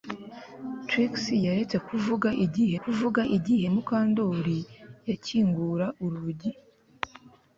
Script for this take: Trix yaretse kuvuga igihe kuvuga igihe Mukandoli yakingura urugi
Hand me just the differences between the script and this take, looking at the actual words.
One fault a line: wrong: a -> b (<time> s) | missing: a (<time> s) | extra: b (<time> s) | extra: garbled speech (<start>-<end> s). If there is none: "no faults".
no faults